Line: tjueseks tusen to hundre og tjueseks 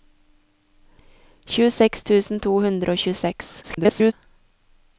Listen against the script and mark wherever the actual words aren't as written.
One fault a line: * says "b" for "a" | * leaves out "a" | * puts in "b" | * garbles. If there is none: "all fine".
* garbles